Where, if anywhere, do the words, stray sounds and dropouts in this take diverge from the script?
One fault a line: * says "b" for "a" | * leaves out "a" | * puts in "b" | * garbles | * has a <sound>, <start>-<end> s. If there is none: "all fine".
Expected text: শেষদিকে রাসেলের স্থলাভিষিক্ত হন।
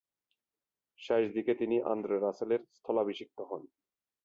* puts in "তিনি আন্দ্রে"